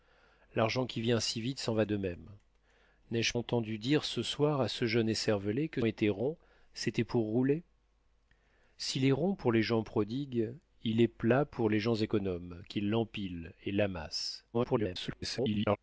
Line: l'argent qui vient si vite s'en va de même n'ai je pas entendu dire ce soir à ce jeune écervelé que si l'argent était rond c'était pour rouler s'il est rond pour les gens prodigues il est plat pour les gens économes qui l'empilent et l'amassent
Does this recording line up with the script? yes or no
no